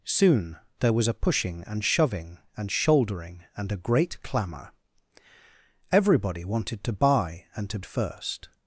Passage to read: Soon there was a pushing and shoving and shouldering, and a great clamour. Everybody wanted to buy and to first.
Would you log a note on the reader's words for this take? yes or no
no